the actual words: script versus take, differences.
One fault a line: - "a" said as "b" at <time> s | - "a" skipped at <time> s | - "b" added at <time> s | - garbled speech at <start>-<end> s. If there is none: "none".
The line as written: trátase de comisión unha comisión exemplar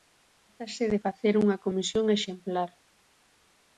- "comisión" said as "facer" at 1.1 s